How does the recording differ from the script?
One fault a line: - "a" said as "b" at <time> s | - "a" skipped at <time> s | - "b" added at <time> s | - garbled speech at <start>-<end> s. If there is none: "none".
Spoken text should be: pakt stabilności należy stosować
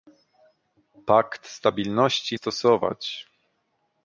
- "należy" skipped at 2.4 s